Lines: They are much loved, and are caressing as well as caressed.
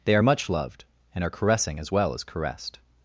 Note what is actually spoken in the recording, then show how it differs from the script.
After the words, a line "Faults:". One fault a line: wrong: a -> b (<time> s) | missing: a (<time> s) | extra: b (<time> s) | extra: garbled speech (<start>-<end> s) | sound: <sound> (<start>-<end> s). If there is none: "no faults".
They are much loved, and are caressing as well as caressed.
Faults:
no faults